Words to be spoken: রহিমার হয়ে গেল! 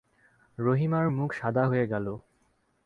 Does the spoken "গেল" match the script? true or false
true